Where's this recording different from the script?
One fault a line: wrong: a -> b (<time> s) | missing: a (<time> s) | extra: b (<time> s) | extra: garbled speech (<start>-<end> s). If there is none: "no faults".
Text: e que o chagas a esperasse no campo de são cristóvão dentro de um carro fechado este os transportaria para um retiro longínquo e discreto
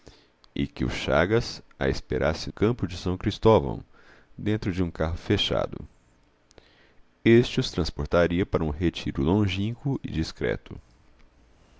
missing: no (2.5 s)